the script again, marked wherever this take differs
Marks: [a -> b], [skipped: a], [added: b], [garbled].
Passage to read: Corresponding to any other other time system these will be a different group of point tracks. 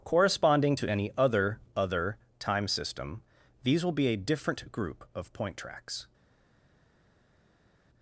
Corresponding to any other other time system these will be a different group of point tracks.